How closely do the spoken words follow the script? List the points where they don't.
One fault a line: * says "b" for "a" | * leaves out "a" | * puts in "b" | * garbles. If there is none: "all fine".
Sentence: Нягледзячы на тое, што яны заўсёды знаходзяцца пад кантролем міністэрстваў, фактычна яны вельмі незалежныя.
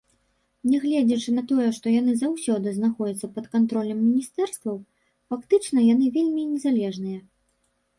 all fine